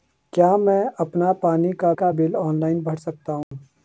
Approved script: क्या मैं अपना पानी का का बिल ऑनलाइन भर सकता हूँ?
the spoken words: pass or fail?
pass